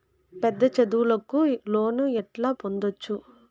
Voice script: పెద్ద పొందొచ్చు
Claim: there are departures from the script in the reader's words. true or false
true